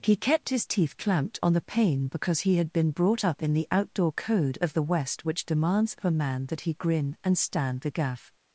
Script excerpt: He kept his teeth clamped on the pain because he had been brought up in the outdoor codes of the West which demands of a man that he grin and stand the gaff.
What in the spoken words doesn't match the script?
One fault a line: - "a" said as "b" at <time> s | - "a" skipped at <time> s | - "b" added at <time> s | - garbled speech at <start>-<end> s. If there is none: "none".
- "codes" said as "code" at 4.1 s